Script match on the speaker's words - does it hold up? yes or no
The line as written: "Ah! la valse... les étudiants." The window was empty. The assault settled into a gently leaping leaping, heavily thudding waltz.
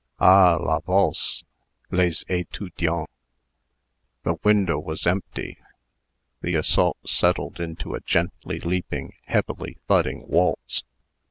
no